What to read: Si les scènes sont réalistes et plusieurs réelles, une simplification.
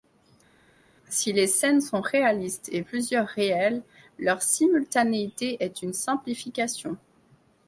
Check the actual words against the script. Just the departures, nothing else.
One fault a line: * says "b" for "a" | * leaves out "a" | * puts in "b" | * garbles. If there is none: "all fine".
* puts in "leur simultanéité est"